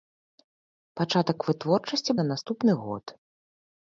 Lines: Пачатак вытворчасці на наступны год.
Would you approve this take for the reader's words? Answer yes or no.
yes